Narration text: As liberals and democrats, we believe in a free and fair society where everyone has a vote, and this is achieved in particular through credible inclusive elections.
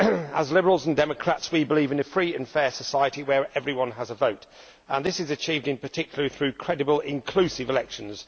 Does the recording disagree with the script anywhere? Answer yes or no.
no